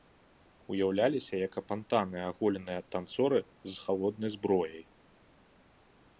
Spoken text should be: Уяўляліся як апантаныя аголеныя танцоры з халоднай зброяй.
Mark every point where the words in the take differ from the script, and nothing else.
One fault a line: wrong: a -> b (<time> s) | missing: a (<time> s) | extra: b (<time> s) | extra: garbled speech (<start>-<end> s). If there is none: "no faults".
no faults